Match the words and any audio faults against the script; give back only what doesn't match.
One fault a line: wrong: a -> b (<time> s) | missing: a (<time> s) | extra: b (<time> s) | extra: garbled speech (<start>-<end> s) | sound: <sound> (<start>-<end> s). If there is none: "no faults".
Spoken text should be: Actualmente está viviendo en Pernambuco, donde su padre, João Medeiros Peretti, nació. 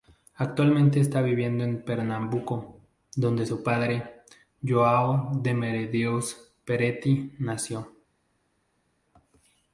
extra: de (5.4 s)